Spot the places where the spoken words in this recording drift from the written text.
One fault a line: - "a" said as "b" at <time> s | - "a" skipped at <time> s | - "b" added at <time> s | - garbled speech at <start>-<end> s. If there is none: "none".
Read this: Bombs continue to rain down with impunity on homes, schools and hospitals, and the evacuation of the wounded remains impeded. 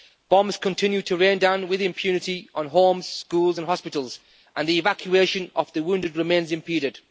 none